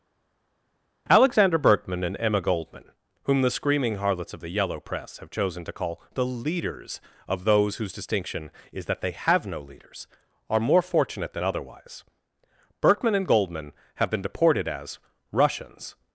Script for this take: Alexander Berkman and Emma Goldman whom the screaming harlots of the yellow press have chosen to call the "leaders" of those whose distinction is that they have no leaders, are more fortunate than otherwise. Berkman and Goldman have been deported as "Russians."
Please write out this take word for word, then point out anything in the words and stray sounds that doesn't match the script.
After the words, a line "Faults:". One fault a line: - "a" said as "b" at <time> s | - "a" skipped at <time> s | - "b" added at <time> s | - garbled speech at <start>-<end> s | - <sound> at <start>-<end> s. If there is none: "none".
Alexander Berkman and Emma Goldman whom the screaming harlots of the yellow press have chosen to call the "leaders" of those whose distinction is that they have no leaders, are more fortunate than otherwise. Berkman and Goldman have been deported as "Russians."
Faults:
none